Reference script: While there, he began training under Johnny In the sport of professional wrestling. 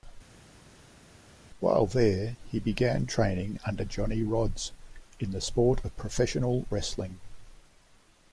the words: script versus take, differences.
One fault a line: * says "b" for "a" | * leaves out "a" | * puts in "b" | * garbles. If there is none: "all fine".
* puts in "Rodz"